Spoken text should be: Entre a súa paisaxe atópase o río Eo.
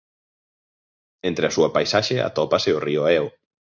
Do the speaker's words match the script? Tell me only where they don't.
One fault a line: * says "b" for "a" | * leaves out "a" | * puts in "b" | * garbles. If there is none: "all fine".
all fine